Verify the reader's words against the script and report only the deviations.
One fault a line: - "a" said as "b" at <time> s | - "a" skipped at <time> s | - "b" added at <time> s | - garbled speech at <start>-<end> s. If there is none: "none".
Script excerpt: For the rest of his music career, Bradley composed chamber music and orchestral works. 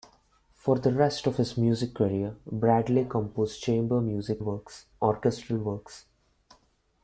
- "and" said as "works" at 4.4 s